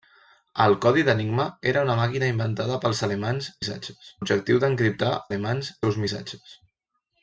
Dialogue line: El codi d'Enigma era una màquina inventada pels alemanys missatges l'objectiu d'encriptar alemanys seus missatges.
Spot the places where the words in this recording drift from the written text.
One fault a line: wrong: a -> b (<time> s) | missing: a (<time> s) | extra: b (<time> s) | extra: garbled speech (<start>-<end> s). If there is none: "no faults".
no faults